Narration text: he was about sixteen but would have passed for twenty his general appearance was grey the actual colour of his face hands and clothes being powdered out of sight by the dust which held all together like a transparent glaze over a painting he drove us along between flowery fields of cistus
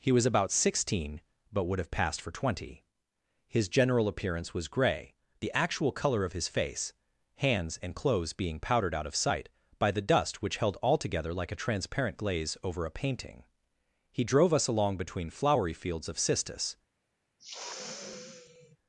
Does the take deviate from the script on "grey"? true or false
false